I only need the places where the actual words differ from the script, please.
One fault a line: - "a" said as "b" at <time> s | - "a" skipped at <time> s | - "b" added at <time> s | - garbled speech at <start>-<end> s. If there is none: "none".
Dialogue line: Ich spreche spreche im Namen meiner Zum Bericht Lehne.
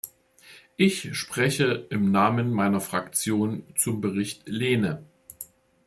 - "spreche" skipped at 1.9 s
- "Fraktion" added at 2.8 s